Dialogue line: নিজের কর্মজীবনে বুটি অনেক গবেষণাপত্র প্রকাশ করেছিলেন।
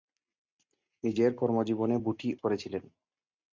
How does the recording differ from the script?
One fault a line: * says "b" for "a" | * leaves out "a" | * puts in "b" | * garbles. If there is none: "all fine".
* leaves out "অনেক গবেষণাপত্র প্রকাশ"